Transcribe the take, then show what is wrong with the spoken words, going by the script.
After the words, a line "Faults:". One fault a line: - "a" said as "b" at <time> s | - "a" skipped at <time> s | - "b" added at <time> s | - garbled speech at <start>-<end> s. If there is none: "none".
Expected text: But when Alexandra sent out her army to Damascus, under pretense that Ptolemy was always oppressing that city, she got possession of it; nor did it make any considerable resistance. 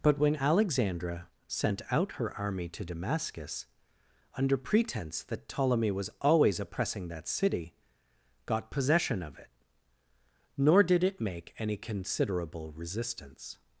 But when Alexandra sent out her army to Damascus, under pretense that Ptolemy was always oppressing that city, got possession of it; nor did it make any considerable resistance.
Faults:
- "she" skipped at 7.8 s